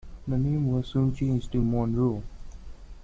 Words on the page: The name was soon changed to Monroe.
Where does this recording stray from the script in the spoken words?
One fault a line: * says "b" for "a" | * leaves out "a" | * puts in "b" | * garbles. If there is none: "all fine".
all fine